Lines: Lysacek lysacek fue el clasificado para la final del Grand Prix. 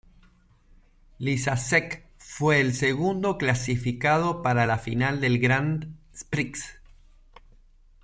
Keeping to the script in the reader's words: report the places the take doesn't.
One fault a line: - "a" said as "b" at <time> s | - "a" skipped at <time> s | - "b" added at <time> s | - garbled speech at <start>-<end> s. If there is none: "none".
- "lysacek" skipped at 2.1 s
- "segundo" added at 2.7 s